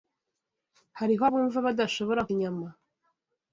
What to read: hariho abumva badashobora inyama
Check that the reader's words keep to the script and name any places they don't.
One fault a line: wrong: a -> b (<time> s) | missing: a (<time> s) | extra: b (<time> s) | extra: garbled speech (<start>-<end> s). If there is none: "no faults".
no faults